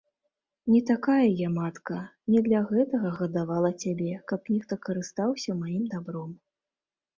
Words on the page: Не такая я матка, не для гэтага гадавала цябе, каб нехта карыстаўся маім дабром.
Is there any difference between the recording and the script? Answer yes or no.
no